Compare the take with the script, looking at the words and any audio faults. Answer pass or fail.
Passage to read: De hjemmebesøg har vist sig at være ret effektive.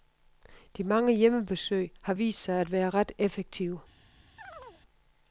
fail